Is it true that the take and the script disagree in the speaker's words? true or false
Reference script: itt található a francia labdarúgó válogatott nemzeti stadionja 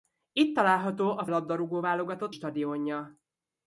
true